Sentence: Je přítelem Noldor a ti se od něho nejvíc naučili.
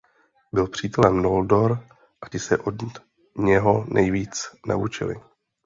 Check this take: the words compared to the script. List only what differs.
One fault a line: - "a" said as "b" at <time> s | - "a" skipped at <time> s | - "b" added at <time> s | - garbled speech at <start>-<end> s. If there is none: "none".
- "Je" said as "Byl" at 0.5 s